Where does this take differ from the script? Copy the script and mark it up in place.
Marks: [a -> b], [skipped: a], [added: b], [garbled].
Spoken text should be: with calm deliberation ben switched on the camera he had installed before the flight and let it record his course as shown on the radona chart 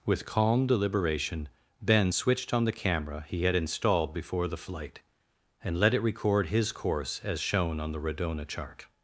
with calm deliberation ben switched on the camera he had installed before the flight and let it record his course as shown on the radona chart